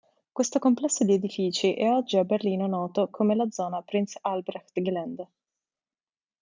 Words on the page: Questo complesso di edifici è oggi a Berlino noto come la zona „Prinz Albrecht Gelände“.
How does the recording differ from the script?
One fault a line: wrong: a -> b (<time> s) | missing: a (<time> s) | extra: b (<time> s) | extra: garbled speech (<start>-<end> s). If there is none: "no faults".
no faults